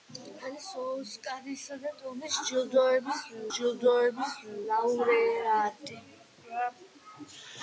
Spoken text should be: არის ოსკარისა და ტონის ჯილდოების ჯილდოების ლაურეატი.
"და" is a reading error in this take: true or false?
false